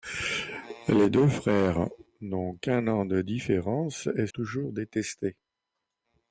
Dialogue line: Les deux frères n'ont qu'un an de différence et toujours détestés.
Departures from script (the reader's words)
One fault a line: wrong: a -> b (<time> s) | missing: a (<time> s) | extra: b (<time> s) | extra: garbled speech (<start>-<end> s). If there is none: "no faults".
no faults